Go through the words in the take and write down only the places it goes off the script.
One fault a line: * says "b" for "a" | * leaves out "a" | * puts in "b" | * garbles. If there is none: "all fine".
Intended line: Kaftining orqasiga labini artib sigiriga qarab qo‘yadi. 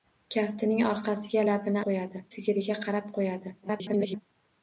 * says "qo‘yadi" for "artib"
* garbles